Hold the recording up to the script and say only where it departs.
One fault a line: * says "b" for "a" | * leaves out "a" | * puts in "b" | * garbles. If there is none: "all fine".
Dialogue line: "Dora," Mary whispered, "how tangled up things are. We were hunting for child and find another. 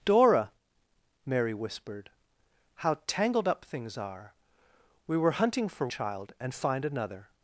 all fine